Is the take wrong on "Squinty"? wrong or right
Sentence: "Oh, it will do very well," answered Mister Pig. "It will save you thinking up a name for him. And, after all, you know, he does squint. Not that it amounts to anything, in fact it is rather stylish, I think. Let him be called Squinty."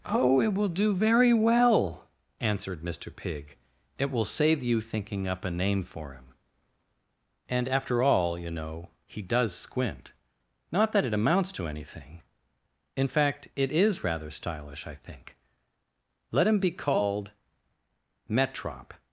wrong